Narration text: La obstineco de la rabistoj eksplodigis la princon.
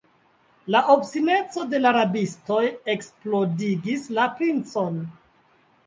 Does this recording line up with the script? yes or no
yes